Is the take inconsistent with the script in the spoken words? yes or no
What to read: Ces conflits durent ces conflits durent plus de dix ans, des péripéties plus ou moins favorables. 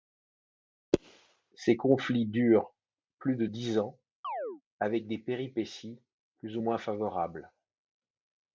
yes